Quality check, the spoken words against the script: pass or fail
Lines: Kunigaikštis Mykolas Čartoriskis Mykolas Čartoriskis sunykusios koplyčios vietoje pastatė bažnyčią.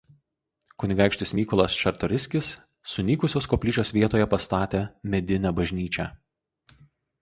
fail